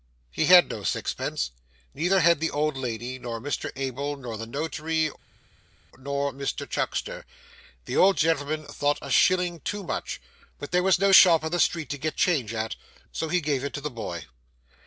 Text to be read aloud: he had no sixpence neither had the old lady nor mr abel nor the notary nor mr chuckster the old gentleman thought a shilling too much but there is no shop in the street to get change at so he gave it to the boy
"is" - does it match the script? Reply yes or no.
no